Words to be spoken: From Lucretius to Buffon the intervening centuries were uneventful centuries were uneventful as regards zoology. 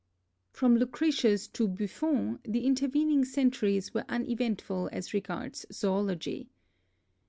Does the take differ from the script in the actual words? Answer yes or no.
yes